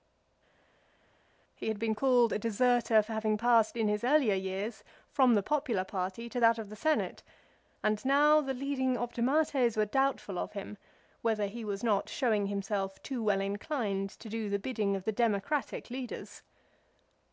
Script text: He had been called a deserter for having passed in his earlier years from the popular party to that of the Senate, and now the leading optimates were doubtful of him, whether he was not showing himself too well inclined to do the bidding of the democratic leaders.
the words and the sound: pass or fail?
pass